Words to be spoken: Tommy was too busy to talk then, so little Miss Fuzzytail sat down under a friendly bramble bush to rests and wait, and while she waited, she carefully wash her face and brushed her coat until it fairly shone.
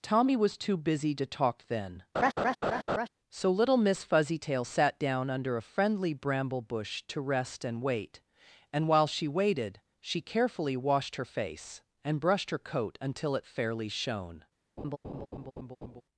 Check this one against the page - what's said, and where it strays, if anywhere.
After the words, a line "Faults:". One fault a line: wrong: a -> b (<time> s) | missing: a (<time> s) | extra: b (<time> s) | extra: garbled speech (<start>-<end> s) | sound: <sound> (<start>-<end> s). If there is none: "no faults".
Tommy was too busy to talk then, so little Miss Fuzzytail sat down under a friendly bramble bush to rest and wait, and while she waited, she carefully washed her face and brushed her coat until it fairly shone.
Faults:
sound: laugh (2.1-3.1 s)
wrong: rests -> rest (7.2 s)
wrong: wash -> washed (10.8 s)
sound: laugh (14.8-16.0 s)